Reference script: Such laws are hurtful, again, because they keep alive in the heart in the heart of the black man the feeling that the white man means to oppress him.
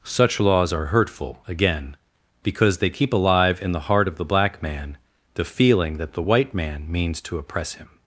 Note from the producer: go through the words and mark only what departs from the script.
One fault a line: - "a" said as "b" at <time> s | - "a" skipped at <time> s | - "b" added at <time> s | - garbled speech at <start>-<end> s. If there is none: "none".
- "in the heart" skipped at 4.1 s